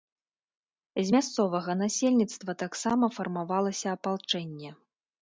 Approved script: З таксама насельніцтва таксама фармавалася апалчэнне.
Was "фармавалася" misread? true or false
false